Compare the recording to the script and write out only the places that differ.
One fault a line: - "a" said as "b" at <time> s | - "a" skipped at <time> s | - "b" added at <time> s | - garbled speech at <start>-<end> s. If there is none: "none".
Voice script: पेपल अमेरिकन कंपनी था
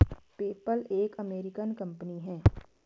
- "एक" added at 0.9 s
- "था" said as "है" at 2.2 s